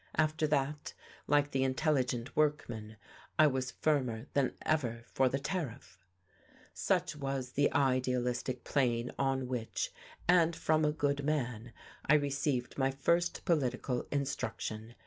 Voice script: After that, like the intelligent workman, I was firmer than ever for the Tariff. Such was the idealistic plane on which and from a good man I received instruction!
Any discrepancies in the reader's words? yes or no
yes